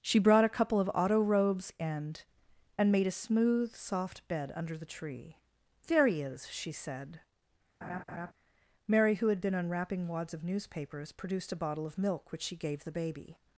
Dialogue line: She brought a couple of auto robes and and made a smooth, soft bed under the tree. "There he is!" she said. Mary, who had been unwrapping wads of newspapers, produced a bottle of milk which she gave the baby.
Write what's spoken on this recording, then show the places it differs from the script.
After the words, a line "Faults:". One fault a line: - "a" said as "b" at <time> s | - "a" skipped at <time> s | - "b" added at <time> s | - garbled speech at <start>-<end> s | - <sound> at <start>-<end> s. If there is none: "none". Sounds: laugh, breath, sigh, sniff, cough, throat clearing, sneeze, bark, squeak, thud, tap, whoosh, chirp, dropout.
She brought a couple of auto robes and and made a smooth, soft bed under the tree. "There he is!" she said. Mary, who had been unwrapping wads of newspapers, produced a bottle of milk which she gave the baby.
Faults:
- laugh at 7.8-8.3 s